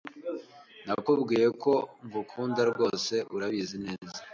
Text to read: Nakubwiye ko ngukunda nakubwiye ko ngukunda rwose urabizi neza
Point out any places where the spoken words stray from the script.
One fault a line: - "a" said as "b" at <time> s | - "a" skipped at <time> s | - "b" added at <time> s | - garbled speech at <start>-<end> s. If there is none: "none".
- "nakubwiye ko ngukunda" skipped at 2.6 s